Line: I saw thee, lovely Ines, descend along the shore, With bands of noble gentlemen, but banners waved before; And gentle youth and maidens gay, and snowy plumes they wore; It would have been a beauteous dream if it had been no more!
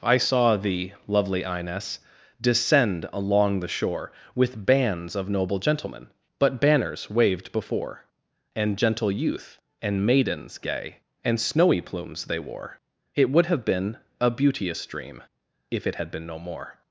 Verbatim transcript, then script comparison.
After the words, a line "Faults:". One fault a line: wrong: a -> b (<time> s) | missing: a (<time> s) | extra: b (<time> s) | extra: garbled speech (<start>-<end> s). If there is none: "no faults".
I saw thee, lovely Ines, descend along the shore, With bands of noble gentlemen, but banners waved before; And gentle youth and maidens gay, and snowy plumes they wore; It would have been a beauteous dream if it had been no more!
Faults:
no faults